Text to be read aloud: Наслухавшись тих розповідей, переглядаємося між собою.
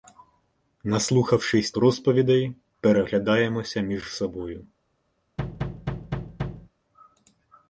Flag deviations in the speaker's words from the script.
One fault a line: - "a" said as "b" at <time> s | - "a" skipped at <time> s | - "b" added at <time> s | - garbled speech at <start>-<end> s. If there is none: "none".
- "тих" skipped at 1.7 s